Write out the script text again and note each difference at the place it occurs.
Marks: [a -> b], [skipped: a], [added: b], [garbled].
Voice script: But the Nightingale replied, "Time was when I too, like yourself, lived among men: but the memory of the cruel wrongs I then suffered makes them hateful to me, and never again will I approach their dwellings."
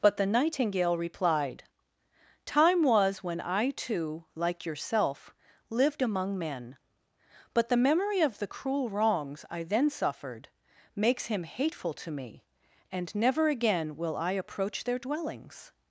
But the Nightingale replied, "Time was when I too, like yourself, lived among men: but the memory of the cruel wrongs I then suffered makes [them -> him] hateful to me, and never again will I approach their dwellings."